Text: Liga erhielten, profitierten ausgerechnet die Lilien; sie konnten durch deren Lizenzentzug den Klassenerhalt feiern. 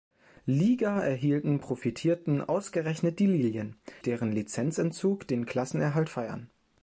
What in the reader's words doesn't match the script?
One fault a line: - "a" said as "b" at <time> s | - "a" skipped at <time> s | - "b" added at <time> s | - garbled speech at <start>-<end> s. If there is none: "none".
- "sie konnten durch" skipped at 3.8 s